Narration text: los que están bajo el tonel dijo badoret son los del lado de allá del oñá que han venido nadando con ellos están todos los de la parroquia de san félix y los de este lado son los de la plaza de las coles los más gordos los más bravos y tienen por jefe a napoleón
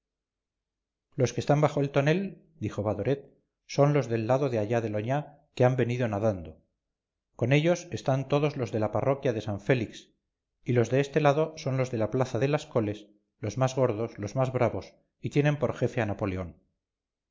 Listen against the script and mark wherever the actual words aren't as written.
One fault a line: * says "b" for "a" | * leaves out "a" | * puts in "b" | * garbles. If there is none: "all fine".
all fine